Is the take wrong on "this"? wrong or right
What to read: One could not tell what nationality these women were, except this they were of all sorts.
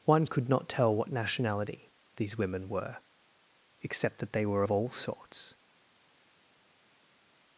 wrong